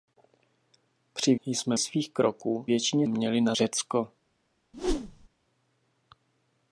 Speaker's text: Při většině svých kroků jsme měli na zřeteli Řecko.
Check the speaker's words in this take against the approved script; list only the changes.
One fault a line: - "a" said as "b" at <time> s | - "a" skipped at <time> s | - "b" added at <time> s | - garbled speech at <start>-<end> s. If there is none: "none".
- "většině" said as "jsme" at 1.4 s
- "jsme" said as "většině" at 2.6 s
- "zřeteli" skipped at 3.6 s